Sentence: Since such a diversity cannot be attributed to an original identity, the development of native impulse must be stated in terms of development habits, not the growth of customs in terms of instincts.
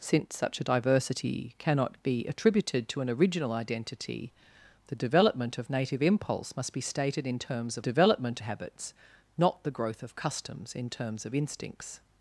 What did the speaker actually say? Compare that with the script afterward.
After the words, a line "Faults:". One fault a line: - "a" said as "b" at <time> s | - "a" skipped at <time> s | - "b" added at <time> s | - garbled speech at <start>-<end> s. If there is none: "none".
Since such a diversity cannot be attributed to an original identity, the development of native impulse must be stated in terms of development habits, not the growth of customs in terms of instincts.
Faults:
none